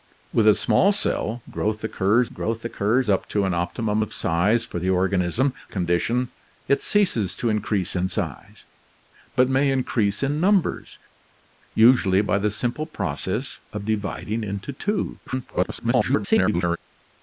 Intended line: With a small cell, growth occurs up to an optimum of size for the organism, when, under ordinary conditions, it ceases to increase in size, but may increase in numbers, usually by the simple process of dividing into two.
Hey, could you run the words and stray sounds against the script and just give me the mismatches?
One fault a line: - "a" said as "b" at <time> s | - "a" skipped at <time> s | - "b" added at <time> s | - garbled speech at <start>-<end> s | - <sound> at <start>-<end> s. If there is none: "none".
- "growth occurs" added at 2.3 s
- "when under ordinary" skipped at 5.5 s
- garbled speech at 15.3-16.8 s